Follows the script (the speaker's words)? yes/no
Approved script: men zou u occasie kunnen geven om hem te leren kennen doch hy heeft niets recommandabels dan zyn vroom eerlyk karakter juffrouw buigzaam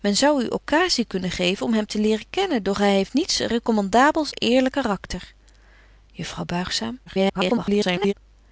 no